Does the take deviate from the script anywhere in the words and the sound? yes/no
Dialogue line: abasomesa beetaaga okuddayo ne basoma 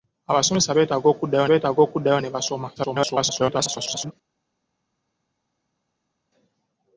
yes